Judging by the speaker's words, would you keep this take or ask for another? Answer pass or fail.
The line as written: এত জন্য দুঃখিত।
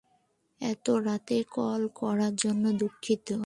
fail